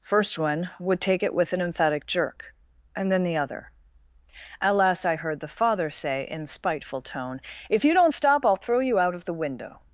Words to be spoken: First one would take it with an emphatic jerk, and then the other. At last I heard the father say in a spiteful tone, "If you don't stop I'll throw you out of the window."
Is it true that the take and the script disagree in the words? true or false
true